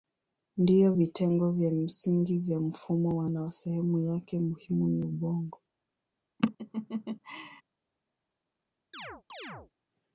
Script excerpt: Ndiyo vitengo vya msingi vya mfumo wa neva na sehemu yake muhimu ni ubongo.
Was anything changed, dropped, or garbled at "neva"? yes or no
yes